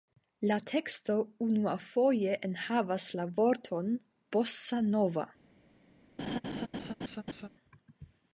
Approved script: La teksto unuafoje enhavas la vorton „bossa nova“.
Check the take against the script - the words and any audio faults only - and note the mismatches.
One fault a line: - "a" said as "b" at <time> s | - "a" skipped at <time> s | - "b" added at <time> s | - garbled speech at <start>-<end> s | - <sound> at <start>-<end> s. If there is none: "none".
- laugh at 6.2-7.5 s